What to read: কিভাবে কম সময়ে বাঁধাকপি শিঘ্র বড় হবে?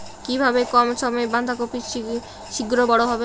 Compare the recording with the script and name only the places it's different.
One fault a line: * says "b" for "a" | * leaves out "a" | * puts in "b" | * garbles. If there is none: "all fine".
all fine